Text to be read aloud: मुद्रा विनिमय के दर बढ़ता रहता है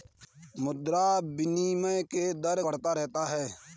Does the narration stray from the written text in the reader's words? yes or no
no